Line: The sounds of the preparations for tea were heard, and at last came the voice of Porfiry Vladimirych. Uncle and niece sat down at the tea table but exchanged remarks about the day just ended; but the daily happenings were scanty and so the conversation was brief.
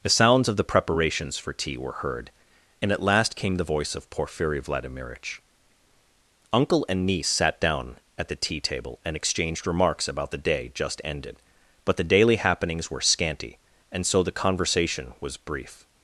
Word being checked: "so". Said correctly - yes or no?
yes